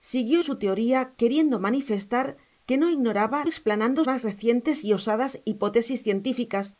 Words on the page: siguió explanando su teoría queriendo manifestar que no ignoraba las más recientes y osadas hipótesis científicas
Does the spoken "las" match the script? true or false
false